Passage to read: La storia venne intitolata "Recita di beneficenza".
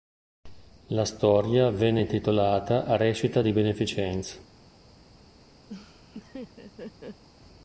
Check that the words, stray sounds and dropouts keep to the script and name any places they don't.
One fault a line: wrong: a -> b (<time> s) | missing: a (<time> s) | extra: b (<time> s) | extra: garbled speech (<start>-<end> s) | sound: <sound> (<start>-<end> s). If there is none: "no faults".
sound: laugh (5.7-7.2 s)